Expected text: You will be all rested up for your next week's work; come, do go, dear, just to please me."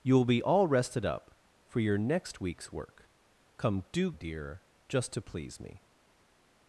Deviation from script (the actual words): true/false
true